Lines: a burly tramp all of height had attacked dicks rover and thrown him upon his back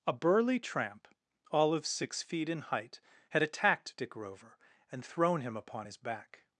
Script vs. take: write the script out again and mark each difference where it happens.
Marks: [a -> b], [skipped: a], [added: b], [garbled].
a burly tramp all of [added: six feet in] height had attacked [dicks -> dick] rover and thrown him upon his back